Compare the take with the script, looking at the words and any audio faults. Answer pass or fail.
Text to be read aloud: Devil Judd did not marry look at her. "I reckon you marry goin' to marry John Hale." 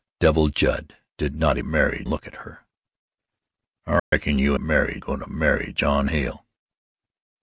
fail